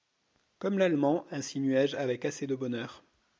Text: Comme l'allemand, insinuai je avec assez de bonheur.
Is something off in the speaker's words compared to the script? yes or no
no